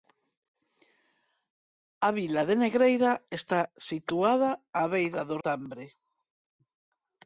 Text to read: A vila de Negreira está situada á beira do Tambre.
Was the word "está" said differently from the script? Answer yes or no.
no